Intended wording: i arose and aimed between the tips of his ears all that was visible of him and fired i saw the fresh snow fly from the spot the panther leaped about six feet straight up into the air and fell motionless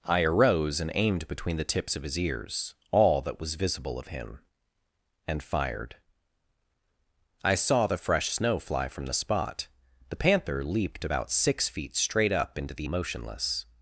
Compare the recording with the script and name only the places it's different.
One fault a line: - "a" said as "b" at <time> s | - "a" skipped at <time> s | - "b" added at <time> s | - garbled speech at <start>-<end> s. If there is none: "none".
- "air and fell" skipped at 12.9 s